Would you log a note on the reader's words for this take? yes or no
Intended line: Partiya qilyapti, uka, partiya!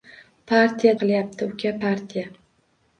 no